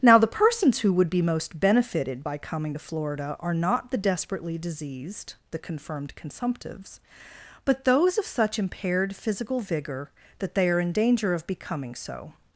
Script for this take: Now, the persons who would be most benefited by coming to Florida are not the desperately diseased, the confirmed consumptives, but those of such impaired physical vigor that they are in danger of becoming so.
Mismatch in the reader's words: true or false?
false